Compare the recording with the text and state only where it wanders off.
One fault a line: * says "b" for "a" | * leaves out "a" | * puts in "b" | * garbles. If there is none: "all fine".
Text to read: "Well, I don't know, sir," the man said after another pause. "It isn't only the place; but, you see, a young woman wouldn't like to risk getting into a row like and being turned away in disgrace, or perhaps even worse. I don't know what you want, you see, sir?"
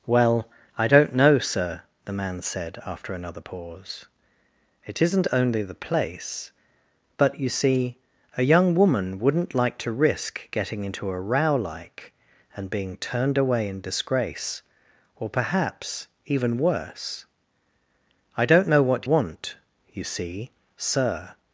* leaves out "you"